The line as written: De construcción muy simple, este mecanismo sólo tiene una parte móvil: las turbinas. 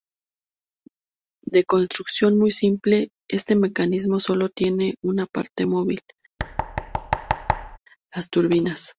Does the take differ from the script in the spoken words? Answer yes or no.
no